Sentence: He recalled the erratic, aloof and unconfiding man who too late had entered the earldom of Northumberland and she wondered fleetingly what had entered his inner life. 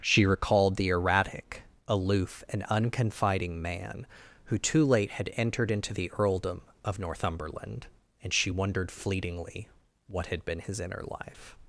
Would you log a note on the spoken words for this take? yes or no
yes